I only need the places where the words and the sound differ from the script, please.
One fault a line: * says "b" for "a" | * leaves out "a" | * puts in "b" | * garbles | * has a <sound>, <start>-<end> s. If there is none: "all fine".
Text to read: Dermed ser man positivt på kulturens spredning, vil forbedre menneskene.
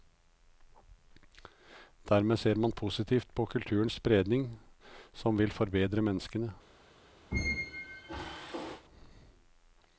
* puts in "som"
* has a squeak, 7.3-8.8 s